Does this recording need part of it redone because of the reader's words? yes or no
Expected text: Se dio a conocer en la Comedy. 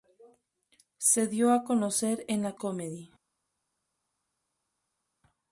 no